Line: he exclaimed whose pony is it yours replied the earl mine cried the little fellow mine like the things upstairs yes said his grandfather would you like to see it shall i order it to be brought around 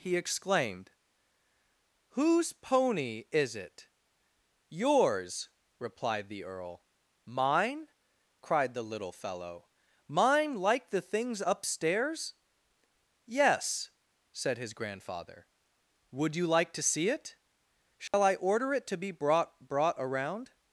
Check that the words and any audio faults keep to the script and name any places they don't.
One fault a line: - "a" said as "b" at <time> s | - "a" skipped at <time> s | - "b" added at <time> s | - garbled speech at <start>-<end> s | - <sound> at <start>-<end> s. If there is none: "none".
- dropout at 18.1-18.1 s
- "brought" added at 19.7 s